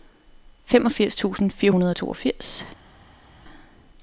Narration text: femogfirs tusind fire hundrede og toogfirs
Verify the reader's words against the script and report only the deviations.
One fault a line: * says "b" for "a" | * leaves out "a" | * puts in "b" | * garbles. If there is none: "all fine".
all fine